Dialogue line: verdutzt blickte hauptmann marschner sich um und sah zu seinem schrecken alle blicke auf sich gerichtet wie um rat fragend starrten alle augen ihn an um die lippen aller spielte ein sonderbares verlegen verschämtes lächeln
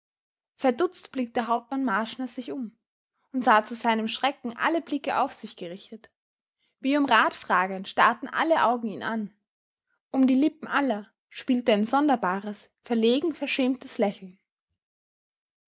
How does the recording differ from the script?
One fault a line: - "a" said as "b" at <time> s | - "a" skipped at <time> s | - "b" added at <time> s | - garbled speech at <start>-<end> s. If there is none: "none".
none